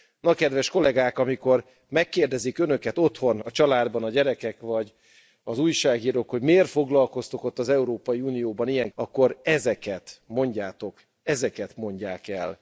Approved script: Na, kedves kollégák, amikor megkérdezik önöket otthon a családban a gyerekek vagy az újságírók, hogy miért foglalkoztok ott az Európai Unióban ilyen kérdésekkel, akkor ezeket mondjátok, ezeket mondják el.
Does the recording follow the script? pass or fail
fail